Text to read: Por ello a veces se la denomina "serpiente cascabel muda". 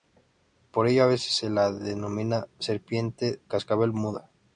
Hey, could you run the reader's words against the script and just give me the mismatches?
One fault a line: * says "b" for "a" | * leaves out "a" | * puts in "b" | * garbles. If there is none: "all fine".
all fine